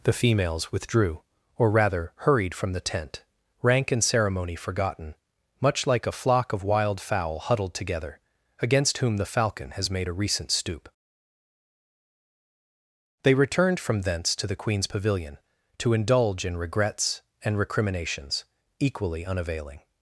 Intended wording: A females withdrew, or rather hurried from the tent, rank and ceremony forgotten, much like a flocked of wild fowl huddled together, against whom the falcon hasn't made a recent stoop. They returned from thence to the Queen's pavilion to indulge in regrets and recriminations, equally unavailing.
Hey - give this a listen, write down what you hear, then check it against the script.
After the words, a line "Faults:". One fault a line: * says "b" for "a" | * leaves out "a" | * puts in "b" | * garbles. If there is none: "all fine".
The females withdrew, or rather hurried from the tent, rank and ceremony forgotten, much like a flock of wild fowl huddled together, against whom the falcon has made a recent stoop. They returned from thence to the Queen's pavilion to indulge in regrets and recriminations, equally unavailing.
Faults:
* says "The" for "A"
* says "flock" for "flocked"
* says "has" for "hasn't"